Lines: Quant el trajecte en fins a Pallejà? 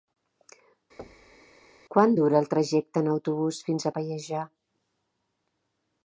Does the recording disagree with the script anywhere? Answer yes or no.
yes